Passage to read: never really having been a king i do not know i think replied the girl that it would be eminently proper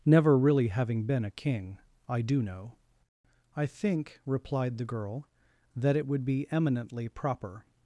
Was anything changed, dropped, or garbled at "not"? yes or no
yes